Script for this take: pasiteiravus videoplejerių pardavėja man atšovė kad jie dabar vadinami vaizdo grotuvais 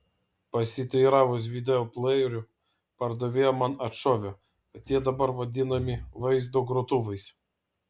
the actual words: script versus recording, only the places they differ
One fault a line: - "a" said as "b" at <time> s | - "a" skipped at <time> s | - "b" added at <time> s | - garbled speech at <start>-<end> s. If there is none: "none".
none